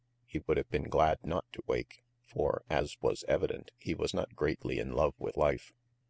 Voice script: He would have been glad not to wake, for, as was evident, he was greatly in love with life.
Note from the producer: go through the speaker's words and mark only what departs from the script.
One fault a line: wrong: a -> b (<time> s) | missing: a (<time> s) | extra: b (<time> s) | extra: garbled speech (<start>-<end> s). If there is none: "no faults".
extra: not (4.2 s)